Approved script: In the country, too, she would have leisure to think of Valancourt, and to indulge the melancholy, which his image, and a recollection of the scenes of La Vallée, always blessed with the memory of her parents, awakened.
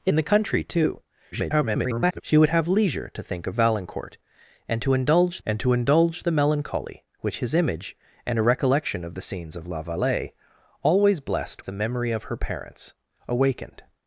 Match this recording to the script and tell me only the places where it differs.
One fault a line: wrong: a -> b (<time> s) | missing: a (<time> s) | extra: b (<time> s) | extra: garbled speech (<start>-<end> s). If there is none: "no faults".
extra: garbled speech (1.3-2.2 s)
extra: and to indulge (5.5 s)
missing: with (11.6 s)